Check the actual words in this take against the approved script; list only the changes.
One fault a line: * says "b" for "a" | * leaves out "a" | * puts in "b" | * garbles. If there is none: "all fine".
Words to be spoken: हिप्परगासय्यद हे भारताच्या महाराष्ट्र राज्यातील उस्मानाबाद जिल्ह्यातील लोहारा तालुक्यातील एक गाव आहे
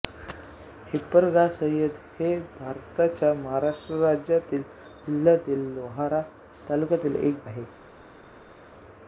* leaves out "उस्मानाबाद"
* leaves out "गाव"